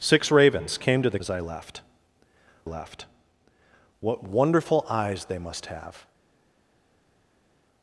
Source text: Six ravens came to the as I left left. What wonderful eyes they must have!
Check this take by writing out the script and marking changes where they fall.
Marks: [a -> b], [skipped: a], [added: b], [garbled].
Six ravens came to the as I left left. What wonderful eyes they must have!